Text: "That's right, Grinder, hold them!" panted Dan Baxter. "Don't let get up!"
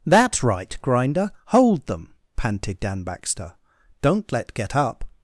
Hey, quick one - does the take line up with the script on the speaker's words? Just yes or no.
yes